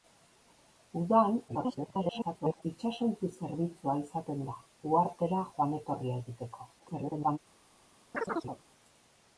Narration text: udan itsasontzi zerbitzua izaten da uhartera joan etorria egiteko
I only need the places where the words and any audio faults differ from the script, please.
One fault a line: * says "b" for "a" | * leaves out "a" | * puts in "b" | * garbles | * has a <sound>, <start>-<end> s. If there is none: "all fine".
* garbles
* garbles
* has a chirp, 8.1-8.6 s